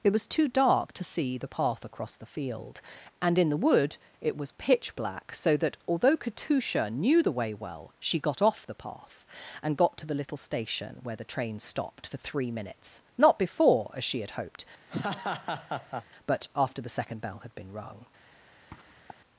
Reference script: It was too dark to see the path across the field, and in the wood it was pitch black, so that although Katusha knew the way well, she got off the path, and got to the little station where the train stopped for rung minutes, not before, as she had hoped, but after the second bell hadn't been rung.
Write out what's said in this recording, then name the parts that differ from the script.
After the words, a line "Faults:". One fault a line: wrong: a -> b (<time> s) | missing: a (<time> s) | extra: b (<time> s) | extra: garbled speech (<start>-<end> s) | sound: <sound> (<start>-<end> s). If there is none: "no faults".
It was too dark to see the path across the field, and in the wood it was pitch black, so that although Katusha knew the way well, she got off the path, and got to the little station where the train stopped for three minutes, not before, as she had hoped, but after the second bell had been rung.
Faults:
wrong: rung -> three (12.2 s)
sound: laugh (14.9-16.1 s)
wrong: hadn't -> had (17.4 s)
sound: sniff (18.7-19.2 s)